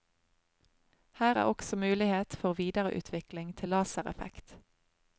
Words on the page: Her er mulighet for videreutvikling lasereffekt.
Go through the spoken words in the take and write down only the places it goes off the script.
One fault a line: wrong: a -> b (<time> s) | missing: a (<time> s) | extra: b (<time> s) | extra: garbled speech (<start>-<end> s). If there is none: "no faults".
extra: også (1.4 s)
extra: til (3.6 s)